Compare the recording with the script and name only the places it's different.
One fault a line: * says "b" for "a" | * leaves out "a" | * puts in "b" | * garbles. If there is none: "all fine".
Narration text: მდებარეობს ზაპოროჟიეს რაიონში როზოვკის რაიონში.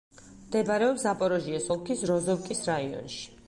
* says "ოლქის" for "რაიონში"